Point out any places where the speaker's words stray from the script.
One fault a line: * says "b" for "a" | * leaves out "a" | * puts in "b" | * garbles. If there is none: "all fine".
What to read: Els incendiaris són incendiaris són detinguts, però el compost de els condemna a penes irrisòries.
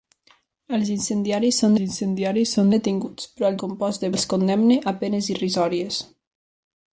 all fine